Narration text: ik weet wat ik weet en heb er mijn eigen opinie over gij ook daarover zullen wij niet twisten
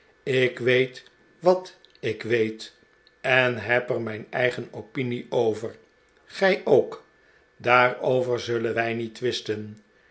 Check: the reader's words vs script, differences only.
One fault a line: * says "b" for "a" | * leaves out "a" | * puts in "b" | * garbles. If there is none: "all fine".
all fine